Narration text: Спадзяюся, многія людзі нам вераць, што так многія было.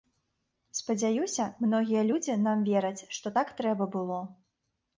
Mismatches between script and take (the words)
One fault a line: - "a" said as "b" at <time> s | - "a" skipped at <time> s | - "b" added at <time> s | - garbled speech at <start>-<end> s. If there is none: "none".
- "многія" said as "трэба" at 3.6 s